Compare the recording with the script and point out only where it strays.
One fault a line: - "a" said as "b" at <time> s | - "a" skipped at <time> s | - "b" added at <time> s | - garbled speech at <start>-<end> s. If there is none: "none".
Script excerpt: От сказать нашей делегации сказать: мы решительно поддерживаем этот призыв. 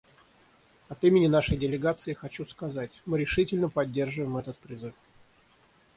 - "сказать" said as "имени" at 1.0 s
- "хочу" added at 2.1 s